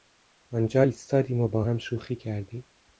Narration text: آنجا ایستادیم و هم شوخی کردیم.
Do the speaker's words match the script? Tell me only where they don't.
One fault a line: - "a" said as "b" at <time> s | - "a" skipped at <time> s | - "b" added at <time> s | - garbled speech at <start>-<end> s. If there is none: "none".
- "با" added at 1.5 s